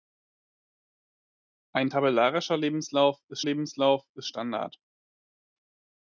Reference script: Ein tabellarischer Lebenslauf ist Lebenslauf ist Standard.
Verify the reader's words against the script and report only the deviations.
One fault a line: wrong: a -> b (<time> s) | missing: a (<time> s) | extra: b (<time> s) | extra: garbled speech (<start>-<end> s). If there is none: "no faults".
no faults